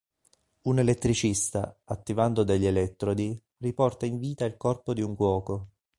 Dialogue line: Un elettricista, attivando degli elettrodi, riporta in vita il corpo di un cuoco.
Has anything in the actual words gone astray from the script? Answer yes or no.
no